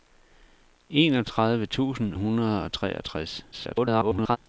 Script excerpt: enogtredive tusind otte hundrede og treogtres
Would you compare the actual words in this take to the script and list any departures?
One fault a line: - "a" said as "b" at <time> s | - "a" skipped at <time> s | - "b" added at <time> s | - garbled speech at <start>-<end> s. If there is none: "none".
- "otte" skipped at 2.1 s
- garbled speech at 3.5-4.4 s